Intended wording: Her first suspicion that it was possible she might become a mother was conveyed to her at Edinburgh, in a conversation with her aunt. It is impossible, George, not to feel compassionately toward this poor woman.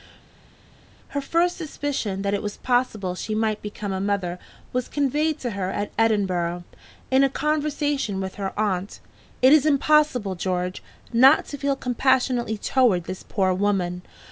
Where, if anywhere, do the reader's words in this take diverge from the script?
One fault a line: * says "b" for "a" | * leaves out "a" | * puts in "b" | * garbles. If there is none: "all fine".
all fine